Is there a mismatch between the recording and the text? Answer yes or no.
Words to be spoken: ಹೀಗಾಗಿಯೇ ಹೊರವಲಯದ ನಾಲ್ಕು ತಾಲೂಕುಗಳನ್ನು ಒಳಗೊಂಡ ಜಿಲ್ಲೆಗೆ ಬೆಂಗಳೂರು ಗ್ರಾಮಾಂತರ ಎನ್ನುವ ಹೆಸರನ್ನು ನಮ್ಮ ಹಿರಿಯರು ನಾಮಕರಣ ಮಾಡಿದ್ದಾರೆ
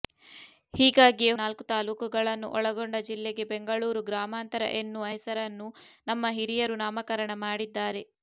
yes